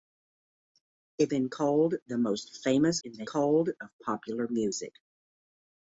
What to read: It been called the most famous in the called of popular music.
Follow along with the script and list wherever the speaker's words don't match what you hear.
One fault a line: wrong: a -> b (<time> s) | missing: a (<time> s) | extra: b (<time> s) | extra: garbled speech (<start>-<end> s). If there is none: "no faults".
no faults